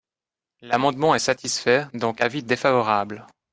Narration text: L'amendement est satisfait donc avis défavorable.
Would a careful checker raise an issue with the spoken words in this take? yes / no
no